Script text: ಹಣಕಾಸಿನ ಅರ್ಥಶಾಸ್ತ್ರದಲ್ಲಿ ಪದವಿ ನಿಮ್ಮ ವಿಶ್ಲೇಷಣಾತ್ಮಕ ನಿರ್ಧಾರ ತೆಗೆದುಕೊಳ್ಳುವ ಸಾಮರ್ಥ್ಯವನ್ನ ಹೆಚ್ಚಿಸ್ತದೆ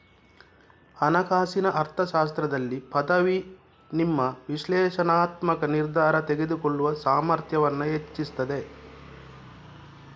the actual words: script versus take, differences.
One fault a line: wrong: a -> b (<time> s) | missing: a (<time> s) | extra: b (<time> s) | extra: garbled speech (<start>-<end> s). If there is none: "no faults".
no faults